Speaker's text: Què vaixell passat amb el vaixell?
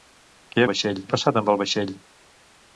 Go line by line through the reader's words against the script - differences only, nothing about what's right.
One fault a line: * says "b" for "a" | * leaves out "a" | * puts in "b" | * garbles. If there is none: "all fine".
all fine